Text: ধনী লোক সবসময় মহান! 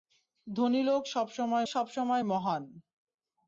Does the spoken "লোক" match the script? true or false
true